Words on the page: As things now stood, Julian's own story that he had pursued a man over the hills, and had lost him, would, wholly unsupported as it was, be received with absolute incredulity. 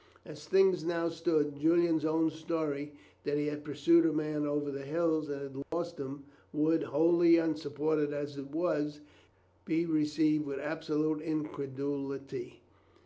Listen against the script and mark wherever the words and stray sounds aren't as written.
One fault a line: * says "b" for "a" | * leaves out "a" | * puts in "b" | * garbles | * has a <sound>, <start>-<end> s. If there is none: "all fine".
* has a dropout, 5.6-5.7 s